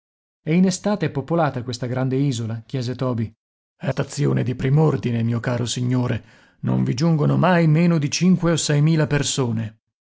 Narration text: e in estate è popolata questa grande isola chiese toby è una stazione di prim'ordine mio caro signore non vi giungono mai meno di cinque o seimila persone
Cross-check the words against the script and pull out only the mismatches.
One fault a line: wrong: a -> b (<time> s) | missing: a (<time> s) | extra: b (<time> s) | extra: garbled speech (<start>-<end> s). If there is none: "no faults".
missing: una (3.9 s)